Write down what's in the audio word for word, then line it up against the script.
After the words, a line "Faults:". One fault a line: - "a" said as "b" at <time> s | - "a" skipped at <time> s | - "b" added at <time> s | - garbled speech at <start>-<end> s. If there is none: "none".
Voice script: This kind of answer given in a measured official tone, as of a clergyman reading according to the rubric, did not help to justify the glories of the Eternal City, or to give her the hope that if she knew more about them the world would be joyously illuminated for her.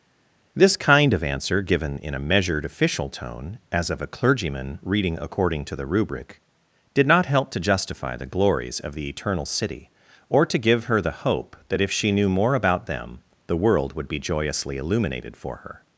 This kind of answer given in a measured official tone, as of a clergyman reading according to the rubric, did not help to justify the glories of the Eternal City, or to give her the hope that if she knew more about them the world would be joyously illuminated for her.
Faults:
none